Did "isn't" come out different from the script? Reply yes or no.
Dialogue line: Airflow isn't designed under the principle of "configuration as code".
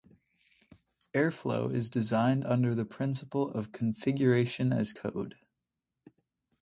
yes